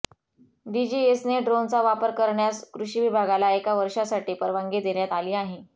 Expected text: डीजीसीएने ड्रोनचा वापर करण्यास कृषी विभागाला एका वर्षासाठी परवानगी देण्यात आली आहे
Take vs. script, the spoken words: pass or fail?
pass